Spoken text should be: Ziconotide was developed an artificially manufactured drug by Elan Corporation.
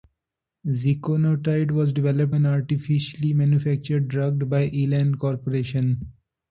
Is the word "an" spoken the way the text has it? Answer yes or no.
yes